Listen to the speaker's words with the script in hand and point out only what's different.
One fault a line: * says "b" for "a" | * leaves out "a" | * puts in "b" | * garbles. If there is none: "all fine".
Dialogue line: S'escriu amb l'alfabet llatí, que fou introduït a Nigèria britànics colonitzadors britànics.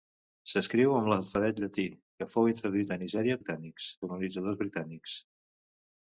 all fine